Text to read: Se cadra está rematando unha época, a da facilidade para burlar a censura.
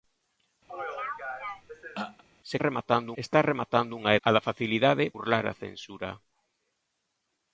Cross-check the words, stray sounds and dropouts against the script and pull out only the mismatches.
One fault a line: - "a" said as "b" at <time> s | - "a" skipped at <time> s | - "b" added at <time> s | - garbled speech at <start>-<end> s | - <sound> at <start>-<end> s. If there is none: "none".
- throat clearing at 0.7-2.2 s
- "cadra" said as "rematando" at 2.7 s
- "época" skipped at 4.1 s
- "para" skipped at 5.0 s